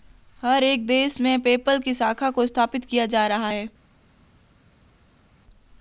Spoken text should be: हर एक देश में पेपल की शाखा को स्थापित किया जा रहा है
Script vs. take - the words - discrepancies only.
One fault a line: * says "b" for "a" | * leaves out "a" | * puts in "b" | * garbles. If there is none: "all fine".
all fine